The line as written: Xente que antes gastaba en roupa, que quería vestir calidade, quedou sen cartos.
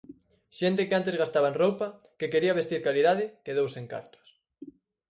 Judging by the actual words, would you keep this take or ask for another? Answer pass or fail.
pass